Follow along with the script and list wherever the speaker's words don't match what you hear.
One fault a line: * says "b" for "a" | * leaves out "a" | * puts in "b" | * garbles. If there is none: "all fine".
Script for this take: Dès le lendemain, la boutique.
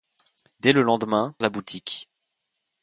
all fine